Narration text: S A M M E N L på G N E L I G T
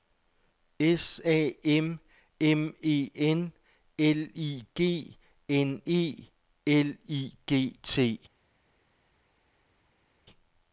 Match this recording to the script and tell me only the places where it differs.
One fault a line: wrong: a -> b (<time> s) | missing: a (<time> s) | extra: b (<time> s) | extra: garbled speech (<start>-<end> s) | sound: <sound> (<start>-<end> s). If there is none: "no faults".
wrong: på -> I (4.4 s)